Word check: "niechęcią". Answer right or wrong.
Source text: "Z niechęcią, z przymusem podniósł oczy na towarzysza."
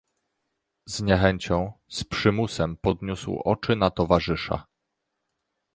right